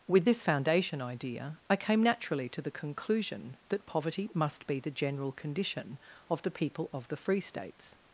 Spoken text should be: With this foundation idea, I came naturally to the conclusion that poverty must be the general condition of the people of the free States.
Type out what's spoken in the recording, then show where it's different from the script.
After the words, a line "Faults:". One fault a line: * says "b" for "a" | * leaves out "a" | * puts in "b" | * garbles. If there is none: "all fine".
With this foundation idea, I came naturally to the conclusion that poverty must be the general condition of the people of the free States.
Faults:
all fine